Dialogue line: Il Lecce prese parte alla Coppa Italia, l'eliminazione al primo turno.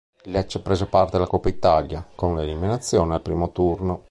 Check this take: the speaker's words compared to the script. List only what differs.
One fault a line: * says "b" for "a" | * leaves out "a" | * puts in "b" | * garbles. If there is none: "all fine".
* puts in "con"